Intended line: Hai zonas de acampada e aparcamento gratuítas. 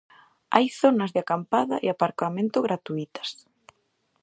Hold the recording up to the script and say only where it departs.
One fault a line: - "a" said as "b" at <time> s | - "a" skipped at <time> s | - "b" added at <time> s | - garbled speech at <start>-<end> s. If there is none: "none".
none